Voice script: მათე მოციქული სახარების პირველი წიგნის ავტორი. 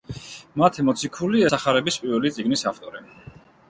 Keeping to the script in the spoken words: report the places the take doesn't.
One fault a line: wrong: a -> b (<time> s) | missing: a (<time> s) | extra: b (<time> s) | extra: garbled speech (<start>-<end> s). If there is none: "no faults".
no faults